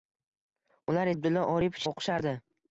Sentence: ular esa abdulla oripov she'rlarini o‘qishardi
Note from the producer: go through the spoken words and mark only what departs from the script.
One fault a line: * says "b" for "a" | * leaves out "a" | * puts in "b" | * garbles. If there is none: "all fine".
* leaves out "esa"
* leaves out "she'rlarini"